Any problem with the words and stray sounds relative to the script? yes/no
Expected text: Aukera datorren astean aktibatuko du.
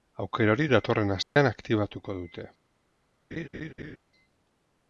yes